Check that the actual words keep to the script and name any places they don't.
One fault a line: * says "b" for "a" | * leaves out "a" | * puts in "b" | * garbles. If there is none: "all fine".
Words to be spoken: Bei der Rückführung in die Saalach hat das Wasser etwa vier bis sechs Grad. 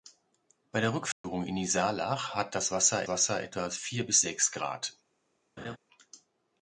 * puts in "Wasser"